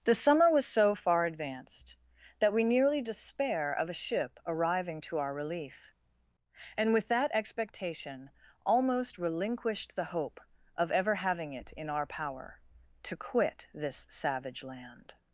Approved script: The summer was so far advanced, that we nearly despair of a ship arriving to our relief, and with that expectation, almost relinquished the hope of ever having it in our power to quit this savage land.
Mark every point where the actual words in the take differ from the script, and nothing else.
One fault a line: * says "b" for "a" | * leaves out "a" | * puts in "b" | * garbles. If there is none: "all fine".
all fine